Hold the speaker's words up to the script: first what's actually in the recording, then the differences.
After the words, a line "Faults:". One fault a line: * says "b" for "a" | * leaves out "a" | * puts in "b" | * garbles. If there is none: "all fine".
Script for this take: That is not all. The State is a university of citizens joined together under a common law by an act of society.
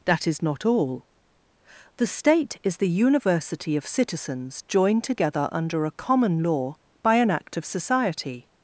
That is not all. The State is the university of citizens joined together under a common law by an act of society.
Faults:
* says "the" for "a"